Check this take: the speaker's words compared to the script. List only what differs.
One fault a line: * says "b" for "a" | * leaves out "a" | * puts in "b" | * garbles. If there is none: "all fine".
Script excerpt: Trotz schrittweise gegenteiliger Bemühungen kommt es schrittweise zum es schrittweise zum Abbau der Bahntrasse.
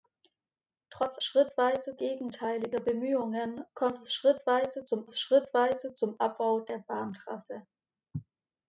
all fine